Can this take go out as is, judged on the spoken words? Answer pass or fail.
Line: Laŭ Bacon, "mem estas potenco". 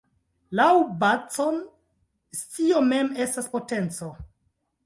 fail